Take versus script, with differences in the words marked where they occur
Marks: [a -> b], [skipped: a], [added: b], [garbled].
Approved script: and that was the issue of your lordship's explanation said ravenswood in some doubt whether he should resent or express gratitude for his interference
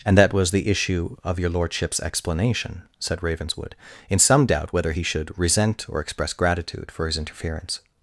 and that was the issue of your lordship's explanation said ravenswood in some doubt whether he should resent or express gratitude for his interference